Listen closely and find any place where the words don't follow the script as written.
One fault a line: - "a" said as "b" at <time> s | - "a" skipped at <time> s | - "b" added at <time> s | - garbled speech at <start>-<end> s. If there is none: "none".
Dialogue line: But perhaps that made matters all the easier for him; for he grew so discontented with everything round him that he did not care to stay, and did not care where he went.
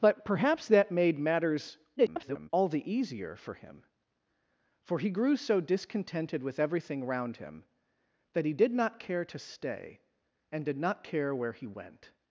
- garbled speech at 2.0-2.5 s